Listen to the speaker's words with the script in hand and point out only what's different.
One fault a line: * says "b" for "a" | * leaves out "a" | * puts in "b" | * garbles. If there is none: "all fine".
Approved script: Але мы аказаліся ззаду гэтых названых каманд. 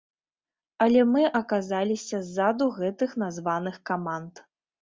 all fine